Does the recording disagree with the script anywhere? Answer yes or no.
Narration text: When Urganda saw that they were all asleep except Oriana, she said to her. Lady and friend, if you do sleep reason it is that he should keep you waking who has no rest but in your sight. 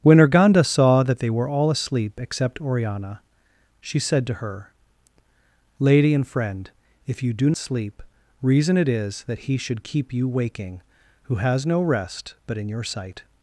no